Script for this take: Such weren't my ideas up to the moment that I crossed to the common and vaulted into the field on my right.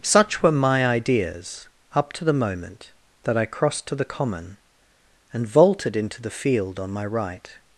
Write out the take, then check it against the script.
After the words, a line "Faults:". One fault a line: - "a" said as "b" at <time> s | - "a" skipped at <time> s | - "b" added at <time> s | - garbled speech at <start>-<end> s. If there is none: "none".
Such were my ideas up to the moment that I crossed to the common and vaulted into the field on my right.
Faults:
- "weren't" said as "were" at 0.4 s